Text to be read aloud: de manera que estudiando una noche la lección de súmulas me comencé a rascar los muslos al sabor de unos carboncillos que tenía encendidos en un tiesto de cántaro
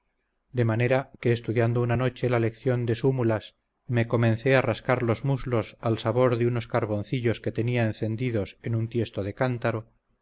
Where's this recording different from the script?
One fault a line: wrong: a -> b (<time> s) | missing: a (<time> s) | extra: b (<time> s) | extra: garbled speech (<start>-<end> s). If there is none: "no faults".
no faults